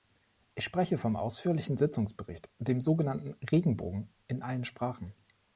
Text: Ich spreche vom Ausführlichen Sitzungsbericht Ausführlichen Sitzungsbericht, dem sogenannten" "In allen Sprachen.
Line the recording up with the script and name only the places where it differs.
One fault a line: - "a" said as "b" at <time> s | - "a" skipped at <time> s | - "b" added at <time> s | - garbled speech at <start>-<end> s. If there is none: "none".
- "Ausführlichen Sitzungsbericht" skipped at 2.5 s
- "Regenbogen" added at 3.5 s